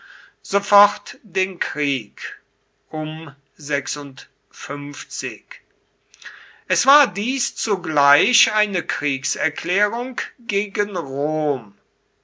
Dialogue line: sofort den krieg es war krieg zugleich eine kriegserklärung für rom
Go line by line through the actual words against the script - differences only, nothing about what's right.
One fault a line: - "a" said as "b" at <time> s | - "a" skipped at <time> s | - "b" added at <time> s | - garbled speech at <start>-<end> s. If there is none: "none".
- "krieg" said as "dies" at 7.1 s
- "für" said as "gegen" at 10.4 s